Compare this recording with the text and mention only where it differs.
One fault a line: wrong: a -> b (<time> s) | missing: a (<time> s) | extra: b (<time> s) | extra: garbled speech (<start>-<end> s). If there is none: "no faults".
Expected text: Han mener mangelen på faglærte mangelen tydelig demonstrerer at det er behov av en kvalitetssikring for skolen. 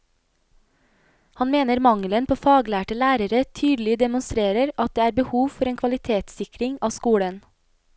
wrong: mangelen -> lærere (3.0 s)
wrong: av -> for (5.6 s)
wrong: for -> av (6.8 s)